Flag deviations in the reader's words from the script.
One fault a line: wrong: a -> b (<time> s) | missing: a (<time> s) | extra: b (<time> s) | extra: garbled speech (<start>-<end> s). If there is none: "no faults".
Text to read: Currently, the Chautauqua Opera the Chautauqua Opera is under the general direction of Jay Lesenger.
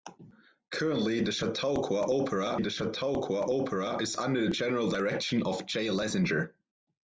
no faults